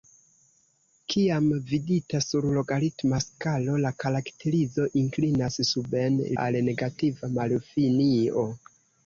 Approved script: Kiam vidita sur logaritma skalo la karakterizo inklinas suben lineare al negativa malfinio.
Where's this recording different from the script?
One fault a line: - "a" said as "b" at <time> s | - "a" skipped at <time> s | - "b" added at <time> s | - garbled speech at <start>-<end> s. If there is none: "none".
- "lineare" skipped at 6.2 s